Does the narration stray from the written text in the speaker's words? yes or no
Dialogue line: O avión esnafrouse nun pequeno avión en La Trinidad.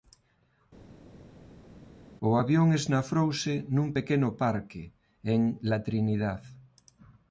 yes